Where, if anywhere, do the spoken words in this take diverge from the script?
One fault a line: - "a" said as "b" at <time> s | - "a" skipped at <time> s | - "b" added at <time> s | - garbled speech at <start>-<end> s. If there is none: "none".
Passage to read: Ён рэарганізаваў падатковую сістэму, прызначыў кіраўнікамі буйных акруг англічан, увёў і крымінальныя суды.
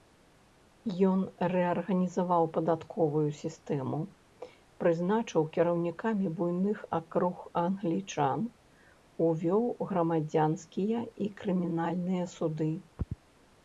- "грамадзянскія" added at 9.9 s